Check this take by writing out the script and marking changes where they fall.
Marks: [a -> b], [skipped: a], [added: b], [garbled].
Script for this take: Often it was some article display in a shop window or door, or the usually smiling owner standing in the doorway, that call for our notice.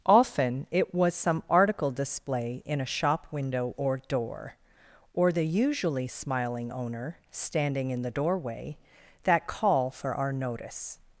Often it was some article display in a shop window or door, or the usually smiling owner standing in the doorway, that call for our notice.